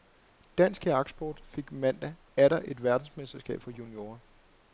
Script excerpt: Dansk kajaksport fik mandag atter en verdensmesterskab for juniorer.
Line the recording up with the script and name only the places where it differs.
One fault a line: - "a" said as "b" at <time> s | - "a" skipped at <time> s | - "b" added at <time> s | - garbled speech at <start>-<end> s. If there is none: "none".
- "en" said as "et" at 2.7 s